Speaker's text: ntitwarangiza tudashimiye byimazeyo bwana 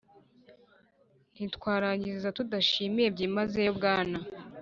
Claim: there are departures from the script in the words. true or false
false